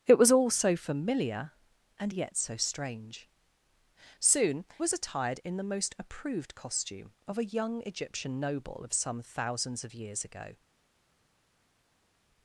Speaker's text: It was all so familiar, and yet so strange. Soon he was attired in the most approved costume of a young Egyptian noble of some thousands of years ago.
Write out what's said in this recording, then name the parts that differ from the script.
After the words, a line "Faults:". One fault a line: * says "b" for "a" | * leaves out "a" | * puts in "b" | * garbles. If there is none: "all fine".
It was all so familiar, and yet so strange. Soon was attired in the most approved costume of a young Egyptian noble of some thousands of years ago.
Faults:
* leaves out "he"